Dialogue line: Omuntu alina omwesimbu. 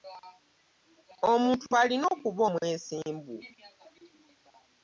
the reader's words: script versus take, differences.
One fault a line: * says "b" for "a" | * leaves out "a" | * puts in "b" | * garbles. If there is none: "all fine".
* puts in "okuba"